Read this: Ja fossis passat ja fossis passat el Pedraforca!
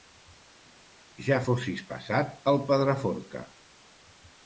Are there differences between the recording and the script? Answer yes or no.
yes